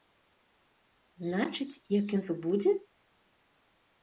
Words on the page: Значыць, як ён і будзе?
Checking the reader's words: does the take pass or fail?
pass